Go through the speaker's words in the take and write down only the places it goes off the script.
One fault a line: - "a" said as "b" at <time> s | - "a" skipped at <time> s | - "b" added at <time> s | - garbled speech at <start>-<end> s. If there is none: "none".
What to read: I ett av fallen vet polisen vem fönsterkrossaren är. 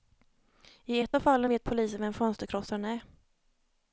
none